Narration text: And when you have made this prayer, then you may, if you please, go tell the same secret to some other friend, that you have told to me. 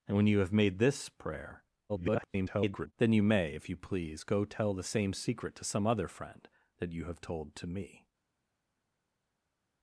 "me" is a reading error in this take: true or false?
false